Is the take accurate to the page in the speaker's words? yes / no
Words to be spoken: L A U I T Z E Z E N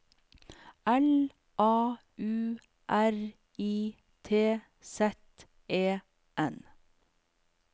no